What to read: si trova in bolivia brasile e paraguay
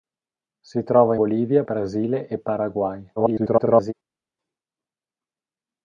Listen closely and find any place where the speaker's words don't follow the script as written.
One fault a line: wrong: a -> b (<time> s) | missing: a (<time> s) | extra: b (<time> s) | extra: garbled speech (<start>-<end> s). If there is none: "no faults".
missing: in (1.1 s)
extra: garbled speech (3.2-3.9 s)